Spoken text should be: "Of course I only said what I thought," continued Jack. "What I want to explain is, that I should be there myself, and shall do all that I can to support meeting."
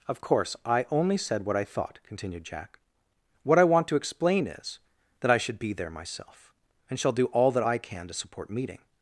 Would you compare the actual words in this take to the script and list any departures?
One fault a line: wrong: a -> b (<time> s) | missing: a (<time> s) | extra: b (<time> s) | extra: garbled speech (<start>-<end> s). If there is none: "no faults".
no faults